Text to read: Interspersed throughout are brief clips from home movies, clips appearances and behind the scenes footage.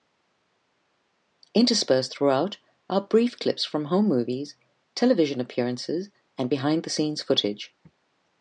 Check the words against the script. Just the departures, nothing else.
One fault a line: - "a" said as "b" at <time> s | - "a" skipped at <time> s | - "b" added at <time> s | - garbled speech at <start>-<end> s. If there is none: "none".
- "clips" said as "television" at 5.0 s